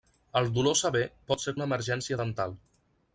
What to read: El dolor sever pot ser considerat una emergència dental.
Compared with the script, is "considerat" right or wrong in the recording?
wrong